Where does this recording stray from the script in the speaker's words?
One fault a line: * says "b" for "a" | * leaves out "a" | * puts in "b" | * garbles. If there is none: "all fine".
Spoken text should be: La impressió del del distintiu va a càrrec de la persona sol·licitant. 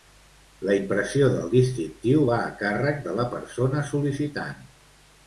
* leaves out "del"